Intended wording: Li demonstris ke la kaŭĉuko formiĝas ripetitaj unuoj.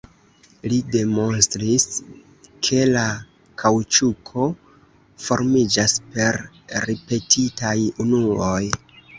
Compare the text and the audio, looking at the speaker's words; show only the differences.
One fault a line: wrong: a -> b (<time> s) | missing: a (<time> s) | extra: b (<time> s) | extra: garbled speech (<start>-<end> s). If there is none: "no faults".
extra: per (6.2 s)